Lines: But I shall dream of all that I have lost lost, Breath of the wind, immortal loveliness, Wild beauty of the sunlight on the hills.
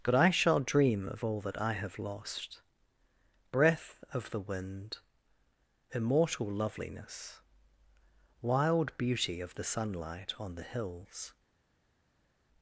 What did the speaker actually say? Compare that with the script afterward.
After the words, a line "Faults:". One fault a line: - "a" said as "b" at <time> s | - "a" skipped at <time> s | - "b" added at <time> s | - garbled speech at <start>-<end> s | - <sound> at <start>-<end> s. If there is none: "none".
But I shall dream of all that I have lost, Breath of the wind, immortal loveliness, Wild beauty of the sunlight on the hills.
Faults:
- "lost" skipped at 2.6 s